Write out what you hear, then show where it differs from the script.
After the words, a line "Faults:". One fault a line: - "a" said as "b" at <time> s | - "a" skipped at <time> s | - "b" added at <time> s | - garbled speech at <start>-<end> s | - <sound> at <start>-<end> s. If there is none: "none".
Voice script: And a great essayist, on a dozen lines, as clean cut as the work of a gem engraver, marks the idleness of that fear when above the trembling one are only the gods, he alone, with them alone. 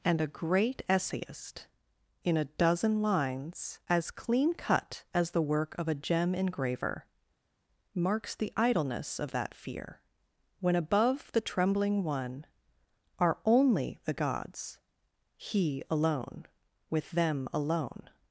And a great essayist, in a dozen lines, as clean cut as the work of a gem engraver, marks the idleness of that fear when above the trembling one are only the gods, he alone, with them alone.
Faults:
- "on" said as "in" at 2.2 s